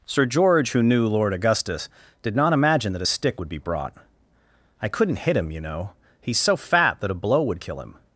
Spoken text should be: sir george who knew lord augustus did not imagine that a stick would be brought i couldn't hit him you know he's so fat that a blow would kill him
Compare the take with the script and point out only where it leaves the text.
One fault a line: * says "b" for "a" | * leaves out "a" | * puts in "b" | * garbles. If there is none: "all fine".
all fine